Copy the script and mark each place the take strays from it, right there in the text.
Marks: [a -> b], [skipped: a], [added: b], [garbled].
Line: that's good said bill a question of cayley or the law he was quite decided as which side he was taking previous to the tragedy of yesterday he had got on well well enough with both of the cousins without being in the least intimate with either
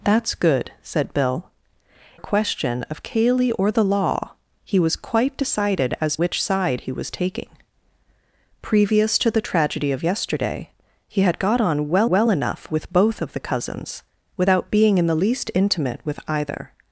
that's good said bill a question of cayley or the law he was quite decided as which side he was taking previous to the tragedy of yesterday he had got on well well enough with both of the cousins without being in the least intimate with either